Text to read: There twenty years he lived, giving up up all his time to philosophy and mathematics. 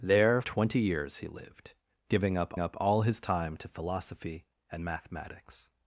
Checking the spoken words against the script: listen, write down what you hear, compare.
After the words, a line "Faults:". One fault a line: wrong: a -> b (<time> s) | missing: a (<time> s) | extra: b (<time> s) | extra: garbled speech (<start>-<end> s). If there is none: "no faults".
There twenty years he lived, giving up up all his time to philosophy and mathematics.
Faults:
no faults